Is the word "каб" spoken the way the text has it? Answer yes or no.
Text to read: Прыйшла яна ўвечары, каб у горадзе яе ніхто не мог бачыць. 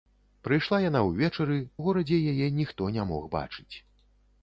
no